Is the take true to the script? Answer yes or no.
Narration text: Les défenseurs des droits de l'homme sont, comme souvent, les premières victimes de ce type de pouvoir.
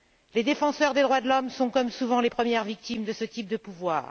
yes